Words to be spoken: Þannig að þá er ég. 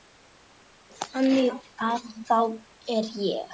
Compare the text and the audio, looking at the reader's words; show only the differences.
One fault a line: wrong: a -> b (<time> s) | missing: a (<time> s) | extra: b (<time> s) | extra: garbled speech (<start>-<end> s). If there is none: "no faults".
no faults